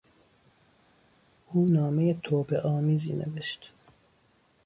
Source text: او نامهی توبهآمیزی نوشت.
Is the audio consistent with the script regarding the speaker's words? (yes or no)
yes